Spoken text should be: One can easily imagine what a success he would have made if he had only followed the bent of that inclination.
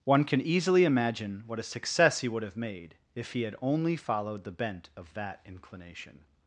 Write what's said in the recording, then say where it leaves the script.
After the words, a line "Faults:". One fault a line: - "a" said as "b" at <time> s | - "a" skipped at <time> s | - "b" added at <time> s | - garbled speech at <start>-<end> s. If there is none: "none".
One can easily imagine what a success he would have made if he had only followed the bent of that inclination.
Faults:
none